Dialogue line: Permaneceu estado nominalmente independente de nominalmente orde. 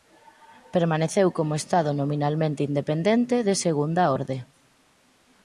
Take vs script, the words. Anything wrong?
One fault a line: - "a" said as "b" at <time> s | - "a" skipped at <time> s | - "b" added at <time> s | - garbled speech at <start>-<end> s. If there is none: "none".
- "como" added at 1.4 s
- "nominalmente" said as "segunda" at 3.6 s